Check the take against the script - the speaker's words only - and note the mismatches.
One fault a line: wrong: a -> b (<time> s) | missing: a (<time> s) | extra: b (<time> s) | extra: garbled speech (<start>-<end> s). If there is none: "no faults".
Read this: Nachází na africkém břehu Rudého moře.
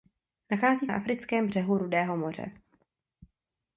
no faults